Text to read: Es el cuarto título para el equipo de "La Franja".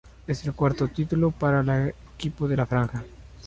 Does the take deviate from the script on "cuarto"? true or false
false